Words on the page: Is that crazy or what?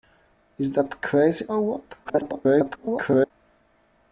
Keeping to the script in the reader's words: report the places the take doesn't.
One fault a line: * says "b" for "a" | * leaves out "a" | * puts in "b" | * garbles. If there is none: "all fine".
* garbles